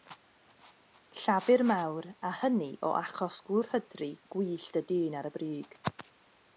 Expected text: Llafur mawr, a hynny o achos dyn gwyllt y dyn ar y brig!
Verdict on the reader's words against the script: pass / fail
fail